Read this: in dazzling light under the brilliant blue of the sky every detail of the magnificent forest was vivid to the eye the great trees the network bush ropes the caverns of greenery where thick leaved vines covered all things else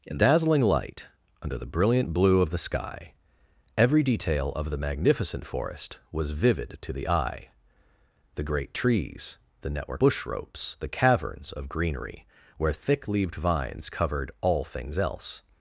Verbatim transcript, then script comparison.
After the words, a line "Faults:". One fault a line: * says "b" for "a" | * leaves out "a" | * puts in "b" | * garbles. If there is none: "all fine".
in dazzling light under the brilliant blue of the sky every detail of the magnificent forest was vivid to the eye the great trees the network bush ropes the caverns of greenery where thick leaved vines covered all things else
Faults:
all fine